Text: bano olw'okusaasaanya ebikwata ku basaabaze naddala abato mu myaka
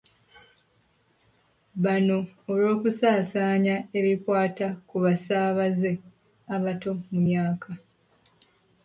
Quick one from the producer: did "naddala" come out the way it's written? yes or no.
no